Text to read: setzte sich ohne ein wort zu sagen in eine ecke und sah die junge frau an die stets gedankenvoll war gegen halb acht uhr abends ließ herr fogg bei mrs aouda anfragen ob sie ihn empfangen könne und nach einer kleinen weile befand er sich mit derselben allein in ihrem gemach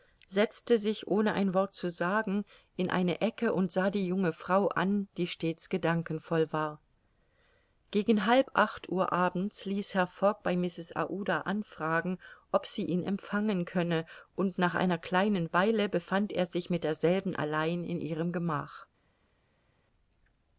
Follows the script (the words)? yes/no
yes